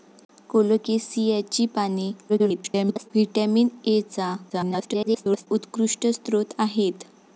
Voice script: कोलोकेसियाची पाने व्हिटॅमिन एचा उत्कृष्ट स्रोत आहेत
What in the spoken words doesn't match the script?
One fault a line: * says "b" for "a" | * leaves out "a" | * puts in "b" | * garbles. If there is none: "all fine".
* garbles
* garbles